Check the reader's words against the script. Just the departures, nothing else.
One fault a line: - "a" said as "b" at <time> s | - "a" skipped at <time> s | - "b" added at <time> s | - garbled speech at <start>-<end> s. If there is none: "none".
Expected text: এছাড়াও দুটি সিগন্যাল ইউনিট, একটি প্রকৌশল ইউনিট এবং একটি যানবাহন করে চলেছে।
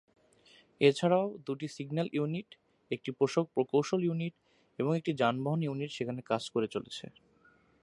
- "ইউনিট সেখানে কাজ" added at 5.6 s